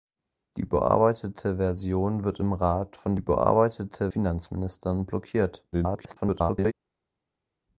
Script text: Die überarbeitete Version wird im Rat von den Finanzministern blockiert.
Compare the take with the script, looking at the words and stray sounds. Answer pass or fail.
fail